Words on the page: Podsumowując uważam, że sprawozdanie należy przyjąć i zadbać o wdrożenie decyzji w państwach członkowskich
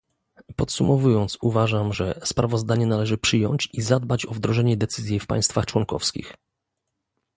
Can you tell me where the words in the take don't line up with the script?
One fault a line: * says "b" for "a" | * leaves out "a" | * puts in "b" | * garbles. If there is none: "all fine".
all fine